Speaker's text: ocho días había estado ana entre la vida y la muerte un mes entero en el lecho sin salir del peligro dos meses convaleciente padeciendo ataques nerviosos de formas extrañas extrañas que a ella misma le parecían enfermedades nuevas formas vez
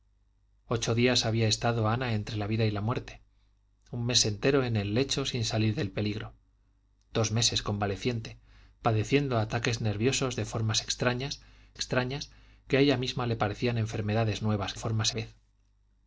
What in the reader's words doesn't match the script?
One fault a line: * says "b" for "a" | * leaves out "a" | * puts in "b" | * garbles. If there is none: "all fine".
all fine